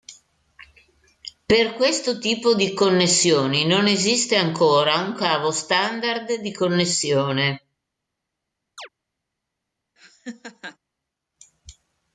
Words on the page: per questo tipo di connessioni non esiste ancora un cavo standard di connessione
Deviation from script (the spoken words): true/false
false